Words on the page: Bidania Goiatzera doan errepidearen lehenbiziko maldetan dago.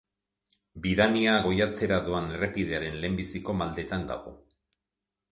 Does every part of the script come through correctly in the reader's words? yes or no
yes